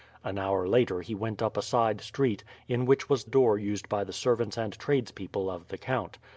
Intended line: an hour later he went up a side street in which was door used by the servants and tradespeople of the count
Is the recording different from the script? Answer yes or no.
no